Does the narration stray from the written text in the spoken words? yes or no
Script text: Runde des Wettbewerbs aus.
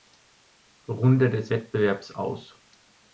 no